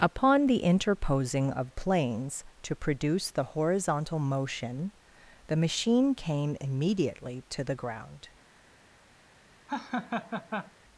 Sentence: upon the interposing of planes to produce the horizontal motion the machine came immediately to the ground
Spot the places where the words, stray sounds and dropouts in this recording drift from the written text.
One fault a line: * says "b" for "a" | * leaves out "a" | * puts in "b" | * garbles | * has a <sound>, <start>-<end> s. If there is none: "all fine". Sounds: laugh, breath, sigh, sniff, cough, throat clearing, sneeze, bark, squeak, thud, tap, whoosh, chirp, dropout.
* has a laugh, 9.7-10.7 s